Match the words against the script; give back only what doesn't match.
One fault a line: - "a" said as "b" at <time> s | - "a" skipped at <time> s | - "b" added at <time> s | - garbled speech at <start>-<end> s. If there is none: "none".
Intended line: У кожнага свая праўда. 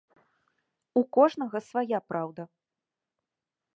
none